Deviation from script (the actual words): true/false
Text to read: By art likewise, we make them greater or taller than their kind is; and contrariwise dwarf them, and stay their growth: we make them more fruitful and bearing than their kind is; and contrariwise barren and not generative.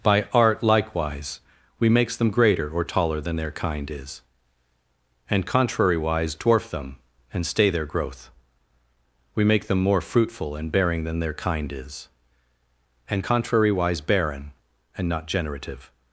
true